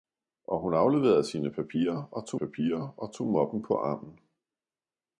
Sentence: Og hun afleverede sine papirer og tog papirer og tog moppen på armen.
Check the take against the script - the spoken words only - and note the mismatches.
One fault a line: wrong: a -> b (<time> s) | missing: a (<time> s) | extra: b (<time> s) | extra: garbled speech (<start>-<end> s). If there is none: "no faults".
no faults